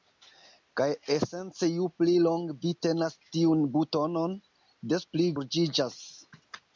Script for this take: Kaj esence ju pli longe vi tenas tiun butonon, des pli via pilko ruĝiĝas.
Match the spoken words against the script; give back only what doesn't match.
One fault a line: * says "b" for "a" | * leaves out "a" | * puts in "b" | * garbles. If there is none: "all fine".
* leaves out "via pilko"